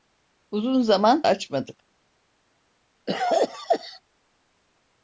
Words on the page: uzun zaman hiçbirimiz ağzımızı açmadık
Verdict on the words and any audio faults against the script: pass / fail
fail